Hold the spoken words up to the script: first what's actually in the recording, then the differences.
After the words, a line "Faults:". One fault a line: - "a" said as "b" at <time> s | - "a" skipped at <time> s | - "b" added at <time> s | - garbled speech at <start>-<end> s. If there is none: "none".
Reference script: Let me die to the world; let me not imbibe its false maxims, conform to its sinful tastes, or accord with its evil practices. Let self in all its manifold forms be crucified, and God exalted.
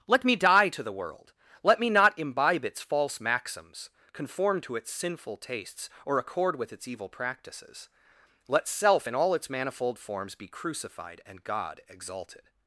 Let me die to the world; let me not imbibe its false maxims, conform to its sinful tastes, or accord with its evil practices. Let self in all its manifold forms be crucified, and God exalted.
Faults:
none